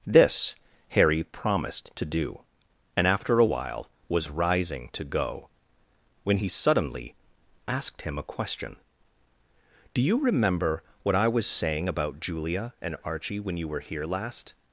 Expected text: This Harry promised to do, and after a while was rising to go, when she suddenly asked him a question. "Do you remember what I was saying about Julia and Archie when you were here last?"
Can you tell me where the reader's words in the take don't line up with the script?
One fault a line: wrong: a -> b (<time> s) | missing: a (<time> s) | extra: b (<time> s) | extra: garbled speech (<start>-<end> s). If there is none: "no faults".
wrong: she -> he (6.4 s)